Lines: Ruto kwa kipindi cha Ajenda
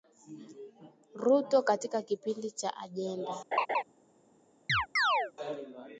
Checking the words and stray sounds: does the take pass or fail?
fail